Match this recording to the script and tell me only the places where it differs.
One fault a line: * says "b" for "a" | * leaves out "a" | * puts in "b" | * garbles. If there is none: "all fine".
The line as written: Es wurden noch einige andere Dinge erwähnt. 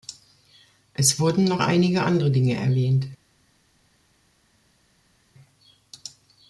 all fine